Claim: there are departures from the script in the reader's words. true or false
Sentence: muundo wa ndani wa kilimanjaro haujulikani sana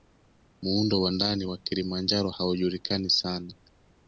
false